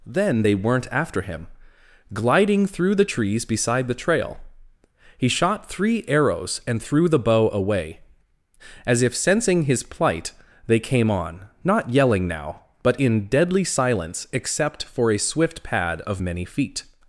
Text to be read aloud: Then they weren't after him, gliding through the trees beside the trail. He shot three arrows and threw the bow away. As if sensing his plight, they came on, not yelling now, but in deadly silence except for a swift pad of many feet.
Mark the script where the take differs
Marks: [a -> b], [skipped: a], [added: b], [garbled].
Then they weren't after him, gliding through the trees beside the trail. He shot three arrows and threw the bow away. As if sensing his plight, they came on, not yelling now, but in deadly silence except for a swift pad of many feet.